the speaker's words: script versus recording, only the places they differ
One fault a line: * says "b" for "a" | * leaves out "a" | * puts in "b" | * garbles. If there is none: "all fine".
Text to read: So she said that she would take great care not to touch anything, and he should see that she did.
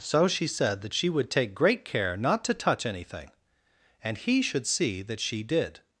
all fine